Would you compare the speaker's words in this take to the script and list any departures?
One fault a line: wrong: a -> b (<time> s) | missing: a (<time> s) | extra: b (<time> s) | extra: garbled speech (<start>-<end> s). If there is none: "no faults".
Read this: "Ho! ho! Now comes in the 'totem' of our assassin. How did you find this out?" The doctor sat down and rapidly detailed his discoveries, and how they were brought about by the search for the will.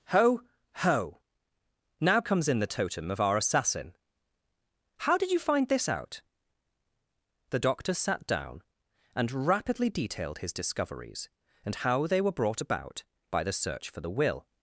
no faults